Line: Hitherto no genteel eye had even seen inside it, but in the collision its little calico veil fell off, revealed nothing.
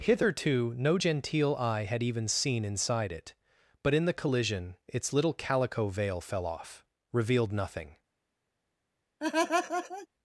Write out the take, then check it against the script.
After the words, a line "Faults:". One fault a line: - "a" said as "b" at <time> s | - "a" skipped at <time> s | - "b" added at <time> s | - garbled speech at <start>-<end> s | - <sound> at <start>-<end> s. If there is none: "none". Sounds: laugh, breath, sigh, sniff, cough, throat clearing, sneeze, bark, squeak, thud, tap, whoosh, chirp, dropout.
Hitherto no genteel eye had even seen inside it, but in the collision its little calico veil fell off, revealed nothing.
Faults:
- laugh at 9.2-10.1 s